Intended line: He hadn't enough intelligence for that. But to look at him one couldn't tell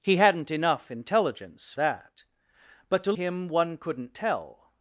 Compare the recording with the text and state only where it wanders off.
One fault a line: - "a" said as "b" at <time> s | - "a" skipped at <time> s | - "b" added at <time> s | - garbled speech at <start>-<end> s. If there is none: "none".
- "for" skipped at 1.7 s
- "look at" skipped at 3.1 s